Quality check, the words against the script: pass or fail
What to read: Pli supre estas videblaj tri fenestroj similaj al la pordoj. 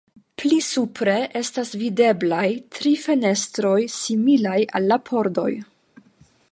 pass